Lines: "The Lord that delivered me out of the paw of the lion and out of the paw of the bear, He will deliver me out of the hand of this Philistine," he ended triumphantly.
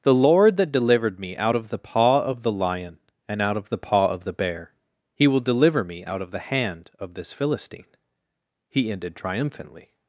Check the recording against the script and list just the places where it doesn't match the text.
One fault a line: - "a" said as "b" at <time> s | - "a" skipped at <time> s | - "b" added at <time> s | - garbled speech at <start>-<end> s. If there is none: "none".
none